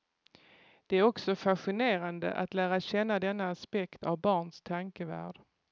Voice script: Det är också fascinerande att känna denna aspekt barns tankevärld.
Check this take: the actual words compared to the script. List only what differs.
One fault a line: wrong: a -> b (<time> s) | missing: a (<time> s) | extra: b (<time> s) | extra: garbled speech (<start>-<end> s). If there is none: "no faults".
extra: lära (2.5 s)
extra: av (4.0 s)